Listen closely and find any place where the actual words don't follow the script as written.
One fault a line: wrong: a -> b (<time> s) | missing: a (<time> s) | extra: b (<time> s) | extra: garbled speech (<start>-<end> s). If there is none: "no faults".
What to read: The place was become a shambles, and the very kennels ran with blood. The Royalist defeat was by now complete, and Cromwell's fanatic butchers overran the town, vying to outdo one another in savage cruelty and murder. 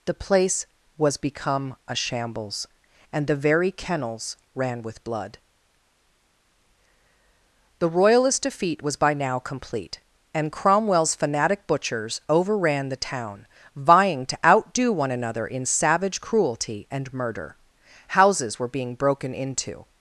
extra: Houses were being broken into (18.1 s)